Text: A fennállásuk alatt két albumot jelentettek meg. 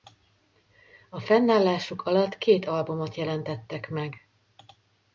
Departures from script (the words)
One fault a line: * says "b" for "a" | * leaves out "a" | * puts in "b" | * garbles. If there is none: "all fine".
all fine